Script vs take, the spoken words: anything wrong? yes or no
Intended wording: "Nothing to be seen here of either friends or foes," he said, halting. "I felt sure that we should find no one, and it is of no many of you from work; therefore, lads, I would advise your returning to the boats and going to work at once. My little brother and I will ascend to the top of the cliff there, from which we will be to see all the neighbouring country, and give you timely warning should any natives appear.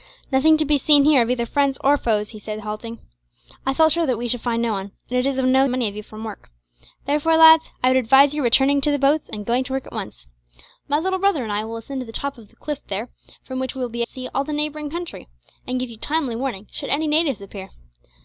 no